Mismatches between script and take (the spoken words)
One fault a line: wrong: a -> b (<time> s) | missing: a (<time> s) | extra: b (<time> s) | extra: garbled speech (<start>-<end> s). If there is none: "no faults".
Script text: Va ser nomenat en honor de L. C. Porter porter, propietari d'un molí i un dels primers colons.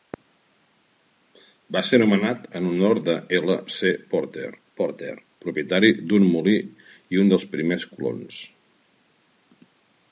no faults